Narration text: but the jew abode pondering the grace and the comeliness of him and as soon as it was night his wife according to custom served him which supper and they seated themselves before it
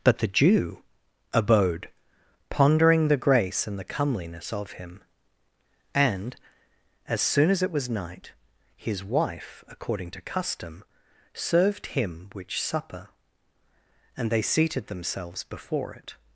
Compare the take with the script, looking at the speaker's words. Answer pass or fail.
pass